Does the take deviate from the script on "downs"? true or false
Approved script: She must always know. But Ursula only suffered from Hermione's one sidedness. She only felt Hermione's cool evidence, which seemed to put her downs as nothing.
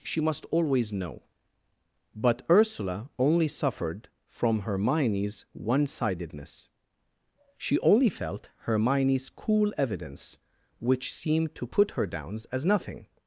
false